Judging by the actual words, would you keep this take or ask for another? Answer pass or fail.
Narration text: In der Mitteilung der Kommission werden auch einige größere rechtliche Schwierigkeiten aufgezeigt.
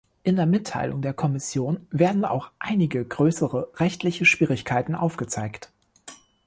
pass